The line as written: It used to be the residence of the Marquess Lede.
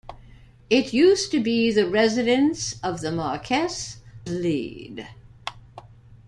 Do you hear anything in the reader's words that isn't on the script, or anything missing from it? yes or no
no